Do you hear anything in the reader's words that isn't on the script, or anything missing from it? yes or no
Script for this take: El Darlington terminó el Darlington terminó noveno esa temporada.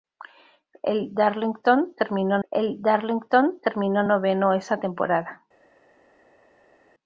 no